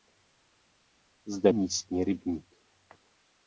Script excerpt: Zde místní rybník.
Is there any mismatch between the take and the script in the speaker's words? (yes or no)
no